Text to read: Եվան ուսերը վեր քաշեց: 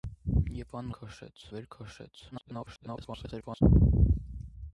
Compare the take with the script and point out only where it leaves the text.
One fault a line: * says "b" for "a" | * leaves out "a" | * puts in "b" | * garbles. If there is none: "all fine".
* says "քաշեց" for "ուսերը"
* garbles